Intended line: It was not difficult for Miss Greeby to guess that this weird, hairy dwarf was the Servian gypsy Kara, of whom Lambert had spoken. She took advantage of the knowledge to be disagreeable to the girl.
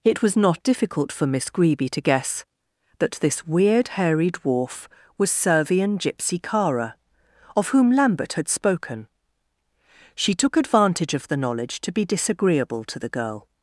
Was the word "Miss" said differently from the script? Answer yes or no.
no